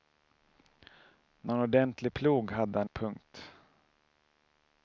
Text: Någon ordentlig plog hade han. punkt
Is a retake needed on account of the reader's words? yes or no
no